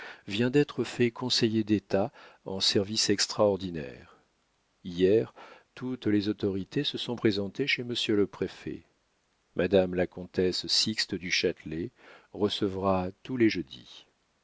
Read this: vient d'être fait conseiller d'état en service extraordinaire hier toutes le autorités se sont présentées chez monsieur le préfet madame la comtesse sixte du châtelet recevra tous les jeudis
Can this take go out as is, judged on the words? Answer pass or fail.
fail